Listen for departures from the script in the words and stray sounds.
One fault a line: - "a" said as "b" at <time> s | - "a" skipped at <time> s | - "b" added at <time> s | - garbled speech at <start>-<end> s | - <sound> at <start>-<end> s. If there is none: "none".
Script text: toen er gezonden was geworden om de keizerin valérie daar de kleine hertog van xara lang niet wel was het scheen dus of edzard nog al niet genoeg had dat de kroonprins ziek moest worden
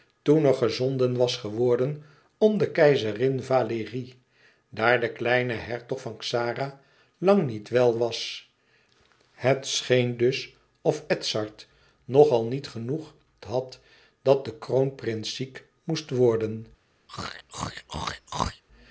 - throat clearing at 17.1-18.6 s